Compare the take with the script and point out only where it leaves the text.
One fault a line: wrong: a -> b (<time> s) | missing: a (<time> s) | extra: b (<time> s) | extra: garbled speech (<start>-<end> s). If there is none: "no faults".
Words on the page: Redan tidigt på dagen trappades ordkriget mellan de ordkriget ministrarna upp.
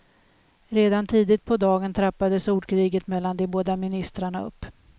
wrong: ordkriget -> båda (3.5 s)